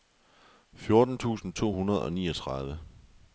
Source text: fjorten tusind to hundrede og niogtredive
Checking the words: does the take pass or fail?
pass